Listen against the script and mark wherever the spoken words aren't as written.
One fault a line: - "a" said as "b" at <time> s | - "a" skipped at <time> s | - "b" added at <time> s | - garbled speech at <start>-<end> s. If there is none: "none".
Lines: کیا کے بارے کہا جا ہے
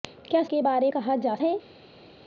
none